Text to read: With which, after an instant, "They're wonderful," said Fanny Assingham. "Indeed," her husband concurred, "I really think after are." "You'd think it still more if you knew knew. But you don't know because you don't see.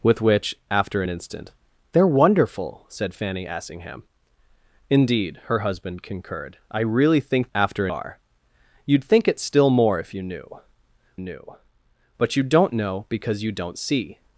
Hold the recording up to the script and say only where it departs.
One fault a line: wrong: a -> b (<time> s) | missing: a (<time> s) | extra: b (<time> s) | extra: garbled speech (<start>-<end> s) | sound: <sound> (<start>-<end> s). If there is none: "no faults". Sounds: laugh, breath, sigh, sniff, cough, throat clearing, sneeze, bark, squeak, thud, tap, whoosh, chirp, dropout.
no faults